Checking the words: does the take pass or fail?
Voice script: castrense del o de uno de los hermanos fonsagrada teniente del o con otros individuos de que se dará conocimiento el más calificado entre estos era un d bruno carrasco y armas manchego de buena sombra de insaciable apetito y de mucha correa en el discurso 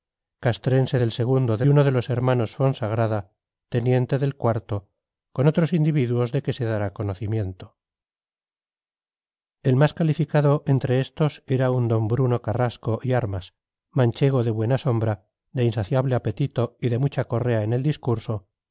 pass